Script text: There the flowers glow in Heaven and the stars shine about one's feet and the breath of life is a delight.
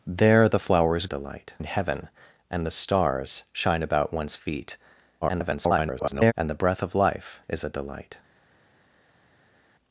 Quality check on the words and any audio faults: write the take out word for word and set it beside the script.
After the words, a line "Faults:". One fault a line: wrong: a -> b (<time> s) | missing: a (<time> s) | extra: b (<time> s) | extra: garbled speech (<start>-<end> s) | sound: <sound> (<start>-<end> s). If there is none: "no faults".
There the flowers delight in Heaven and the stars shine about one's feet [garbled] and the breath of life is a delight.
Faults:
wrong: glow -> delight (1.0 s)
extra: garbled speech (5.2-6.3 s)